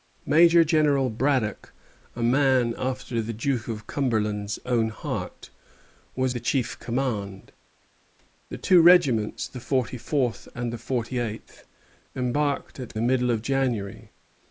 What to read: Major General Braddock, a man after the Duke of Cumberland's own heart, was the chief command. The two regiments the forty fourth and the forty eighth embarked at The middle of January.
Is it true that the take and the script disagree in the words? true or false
false